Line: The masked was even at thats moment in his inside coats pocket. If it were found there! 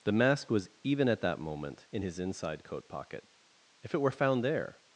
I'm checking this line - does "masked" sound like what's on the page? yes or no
no